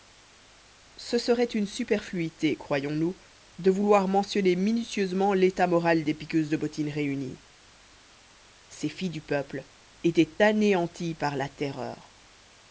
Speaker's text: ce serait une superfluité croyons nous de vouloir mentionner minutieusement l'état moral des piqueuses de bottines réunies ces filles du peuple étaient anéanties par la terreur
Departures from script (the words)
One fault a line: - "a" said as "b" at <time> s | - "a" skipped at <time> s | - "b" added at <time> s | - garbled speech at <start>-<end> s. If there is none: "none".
none